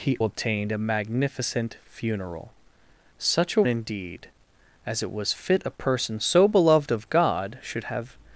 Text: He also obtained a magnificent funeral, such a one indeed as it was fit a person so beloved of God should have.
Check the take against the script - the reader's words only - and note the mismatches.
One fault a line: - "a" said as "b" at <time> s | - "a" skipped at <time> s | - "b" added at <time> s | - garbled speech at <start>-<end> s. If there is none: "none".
- "also" skipped at 0.2 s
- "one" skipped at 3.6 s